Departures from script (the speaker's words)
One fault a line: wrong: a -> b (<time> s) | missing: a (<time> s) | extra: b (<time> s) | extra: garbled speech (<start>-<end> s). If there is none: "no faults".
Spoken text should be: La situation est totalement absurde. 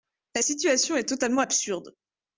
no faults